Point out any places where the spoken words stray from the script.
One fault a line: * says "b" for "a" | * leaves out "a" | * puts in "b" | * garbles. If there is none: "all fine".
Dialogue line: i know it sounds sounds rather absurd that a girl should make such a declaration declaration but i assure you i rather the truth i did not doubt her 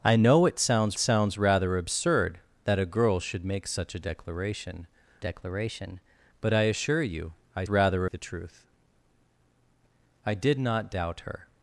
all fine